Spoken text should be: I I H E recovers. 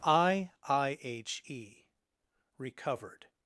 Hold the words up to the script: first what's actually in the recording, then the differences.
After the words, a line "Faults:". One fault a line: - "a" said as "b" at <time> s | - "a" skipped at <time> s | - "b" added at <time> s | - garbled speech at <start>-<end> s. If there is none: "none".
I I H E recovered.
Faults:
- "recovers" said as "recovered" at 2.6 s